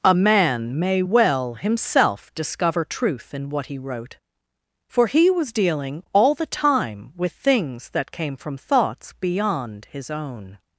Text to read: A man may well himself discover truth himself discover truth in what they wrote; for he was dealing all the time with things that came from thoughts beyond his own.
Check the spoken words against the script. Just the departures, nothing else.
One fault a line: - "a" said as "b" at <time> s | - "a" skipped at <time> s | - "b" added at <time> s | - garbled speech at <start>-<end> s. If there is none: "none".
- "himself discover truth" skipped at 3.3 s
- "they" said as "he" at 3.7 s